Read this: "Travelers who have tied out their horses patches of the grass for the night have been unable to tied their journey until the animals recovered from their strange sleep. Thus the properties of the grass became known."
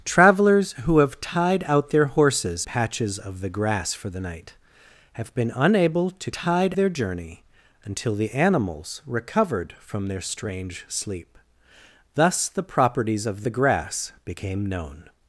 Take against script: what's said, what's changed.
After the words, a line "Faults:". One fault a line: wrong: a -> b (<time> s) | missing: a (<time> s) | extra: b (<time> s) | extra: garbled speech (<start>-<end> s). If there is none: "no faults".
"Travelers who have tied out their horses patches of the grass for the night have been unable to tied their journey until the animals recovered from their strange sleep. Thus the properties of the grass became known."
Faults:
no faults